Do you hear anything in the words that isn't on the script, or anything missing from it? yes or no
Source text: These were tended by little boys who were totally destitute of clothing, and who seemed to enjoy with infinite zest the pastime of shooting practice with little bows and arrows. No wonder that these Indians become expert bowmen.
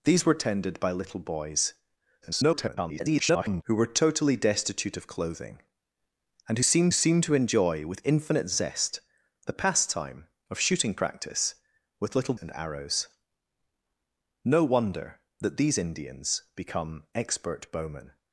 yes